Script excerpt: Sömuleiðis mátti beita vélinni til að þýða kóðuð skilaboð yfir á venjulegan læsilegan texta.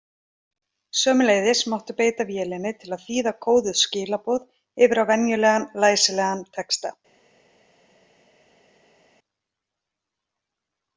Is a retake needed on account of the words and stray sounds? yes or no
no